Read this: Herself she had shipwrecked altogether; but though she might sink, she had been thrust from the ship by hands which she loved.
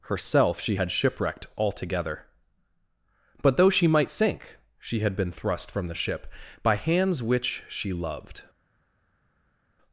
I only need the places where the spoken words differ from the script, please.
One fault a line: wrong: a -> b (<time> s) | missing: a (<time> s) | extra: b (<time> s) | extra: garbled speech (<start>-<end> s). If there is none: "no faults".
no faults